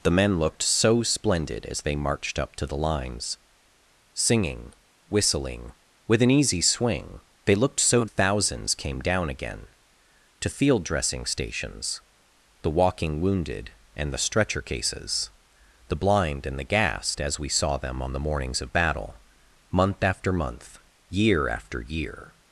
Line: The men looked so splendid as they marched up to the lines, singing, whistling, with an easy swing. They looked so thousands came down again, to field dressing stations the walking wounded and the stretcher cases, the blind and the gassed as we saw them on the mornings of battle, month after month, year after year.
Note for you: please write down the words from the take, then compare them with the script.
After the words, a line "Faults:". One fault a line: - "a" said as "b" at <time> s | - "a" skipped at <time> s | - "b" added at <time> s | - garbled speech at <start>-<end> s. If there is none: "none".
The men looked so splendid as they marched up to the lines, singing, whistling, with an easy swing. They looked so thousands came down again, to field dressing stations the walking wounded and the stretcher cases, the blind and the gassed as we saw them on the mornings of battle, month after month, year after year.
Faults:
none